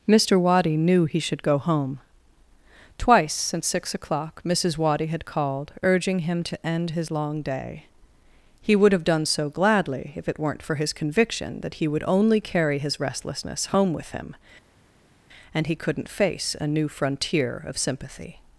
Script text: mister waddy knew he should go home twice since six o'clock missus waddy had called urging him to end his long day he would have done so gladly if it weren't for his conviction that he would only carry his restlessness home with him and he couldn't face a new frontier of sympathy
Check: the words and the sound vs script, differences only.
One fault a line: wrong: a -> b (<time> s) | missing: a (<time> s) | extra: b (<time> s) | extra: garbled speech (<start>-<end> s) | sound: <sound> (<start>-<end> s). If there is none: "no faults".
no faults